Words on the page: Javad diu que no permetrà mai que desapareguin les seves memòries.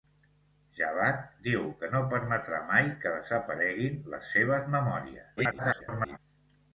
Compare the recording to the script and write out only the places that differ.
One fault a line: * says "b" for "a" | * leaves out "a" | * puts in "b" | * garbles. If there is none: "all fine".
* garbles